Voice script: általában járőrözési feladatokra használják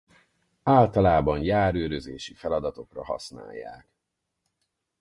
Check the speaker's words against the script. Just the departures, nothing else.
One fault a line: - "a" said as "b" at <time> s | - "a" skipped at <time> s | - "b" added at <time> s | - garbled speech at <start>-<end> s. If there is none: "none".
none